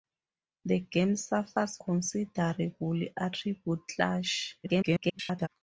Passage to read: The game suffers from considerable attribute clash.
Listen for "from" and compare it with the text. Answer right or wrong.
wrong